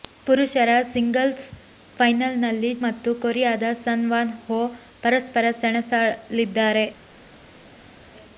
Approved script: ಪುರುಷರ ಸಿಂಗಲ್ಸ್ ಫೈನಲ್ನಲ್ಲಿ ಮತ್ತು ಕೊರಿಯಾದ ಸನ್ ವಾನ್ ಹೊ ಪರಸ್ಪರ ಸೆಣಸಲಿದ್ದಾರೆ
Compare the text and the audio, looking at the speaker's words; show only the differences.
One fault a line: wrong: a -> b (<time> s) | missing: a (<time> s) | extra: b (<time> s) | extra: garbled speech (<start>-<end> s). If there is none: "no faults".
no faults